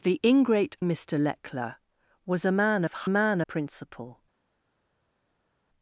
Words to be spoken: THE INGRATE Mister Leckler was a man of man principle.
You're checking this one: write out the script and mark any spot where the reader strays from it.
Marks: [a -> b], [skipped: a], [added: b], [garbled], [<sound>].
THE INGRATE Mister Leckler was a man of man principle.